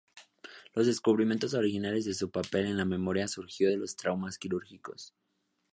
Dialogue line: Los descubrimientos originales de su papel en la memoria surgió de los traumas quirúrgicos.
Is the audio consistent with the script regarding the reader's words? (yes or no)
yes